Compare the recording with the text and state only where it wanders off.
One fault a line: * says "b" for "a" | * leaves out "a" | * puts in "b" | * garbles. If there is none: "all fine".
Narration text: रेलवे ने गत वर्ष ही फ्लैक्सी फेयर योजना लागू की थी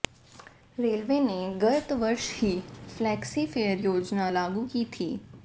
all fine